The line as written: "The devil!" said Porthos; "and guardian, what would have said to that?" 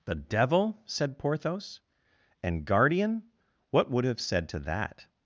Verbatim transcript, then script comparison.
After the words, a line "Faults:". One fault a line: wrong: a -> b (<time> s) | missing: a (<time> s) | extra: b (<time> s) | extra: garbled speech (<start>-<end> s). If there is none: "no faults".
"The devil!" said Porthos; "and guardian, what would have said to that?"
Faults:
no faults